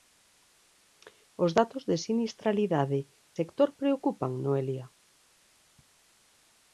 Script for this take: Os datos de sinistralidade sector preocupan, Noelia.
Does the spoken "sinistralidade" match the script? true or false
true